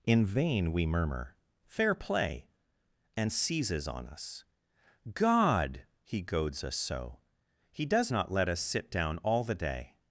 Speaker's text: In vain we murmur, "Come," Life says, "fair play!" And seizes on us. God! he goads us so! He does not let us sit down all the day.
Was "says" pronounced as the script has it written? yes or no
no